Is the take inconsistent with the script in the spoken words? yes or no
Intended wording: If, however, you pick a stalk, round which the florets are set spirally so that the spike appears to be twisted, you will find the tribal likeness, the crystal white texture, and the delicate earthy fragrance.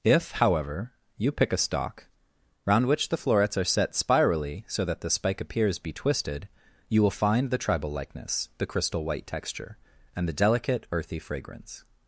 yes